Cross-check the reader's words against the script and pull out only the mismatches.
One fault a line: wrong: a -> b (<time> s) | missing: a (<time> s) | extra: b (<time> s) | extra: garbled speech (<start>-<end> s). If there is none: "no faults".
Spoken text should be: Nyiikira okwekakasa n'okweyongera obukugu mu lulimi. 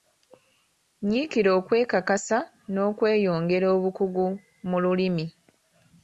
no faults